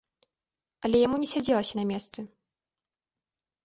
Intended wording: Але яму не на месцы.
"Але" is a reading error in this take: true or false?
false